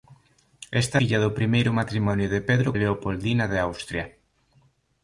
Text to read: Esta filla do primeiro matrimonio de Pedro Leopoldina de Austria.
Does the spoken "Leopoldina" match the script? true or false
true